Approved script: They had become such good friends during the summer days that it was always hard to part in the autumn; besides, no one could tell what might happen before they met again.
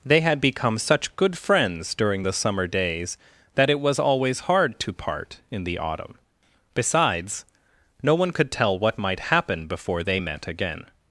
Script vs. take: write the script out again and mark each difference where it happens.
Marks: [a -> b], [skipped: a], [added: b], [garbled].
They had become such good friends during the summer days that it was always hard to part in the autumn; besides, no one could tell what might happen before they met again.